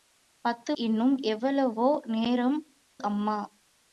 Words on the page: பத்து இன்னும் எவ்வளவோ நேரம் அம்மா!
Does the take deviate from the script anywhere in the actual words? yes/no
no